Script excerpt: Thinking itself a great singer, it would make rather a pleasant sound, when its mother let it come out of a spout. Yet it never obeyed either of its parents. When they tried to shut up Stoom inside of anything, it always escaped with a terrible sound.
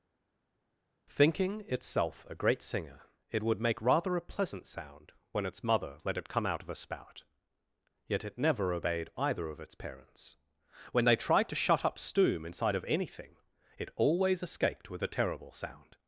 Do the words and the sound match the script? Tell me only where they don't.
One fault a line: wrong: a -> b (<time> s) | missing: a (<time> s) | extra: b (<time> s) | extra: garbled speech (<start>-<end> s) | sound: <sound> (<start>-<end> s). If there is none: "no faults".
no faults